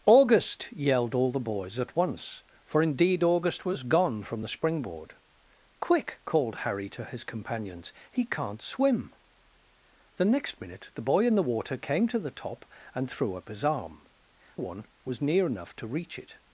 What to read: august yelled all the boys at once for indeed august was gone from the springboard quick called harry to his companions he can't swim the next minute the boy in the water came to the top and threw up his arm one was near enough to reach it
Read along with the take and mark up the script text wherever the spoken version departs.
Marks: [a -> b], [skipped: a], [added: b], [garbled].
august yelled all the boys at once for indeed august was gone from the springboard quick called harry to his companions he can't swim the next minute the boy in the water came to the top and threw up his arm one was near enough to reach it